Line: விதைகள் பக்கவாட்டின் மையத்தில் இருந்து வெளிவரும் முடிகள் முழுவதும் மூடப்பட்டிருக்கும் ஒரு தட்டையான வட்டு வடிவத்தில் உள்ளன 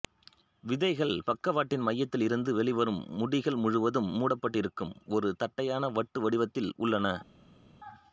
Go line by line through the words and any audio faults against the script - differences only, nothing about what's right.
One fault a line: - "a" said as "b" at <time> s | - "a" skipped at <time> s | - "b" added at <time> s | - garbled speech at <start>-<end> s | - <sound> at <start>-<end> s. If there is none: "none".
none